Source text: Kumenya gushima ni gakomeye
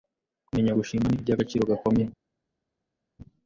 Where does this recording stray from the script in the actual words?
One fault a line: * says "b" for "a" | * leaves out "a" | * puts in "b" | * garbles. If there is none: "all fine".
* puts in "iby'agaciro"